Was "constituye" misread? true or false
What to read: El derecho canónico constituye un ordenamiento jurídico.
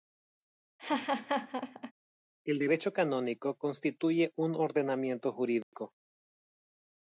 false